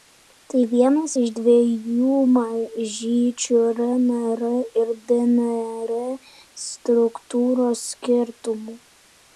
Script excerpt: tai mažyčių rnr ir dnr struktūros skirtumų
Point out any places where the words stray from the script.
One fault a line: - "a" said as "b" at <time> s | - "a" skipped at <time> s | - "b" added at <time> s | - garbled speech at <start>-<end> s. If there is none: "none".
- "vienas iš dviejų" added at 0.7 s